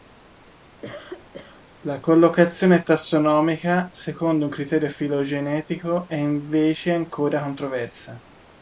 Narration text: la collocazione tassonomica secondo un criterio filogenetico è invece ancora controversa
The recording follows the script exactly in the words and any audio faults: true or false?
false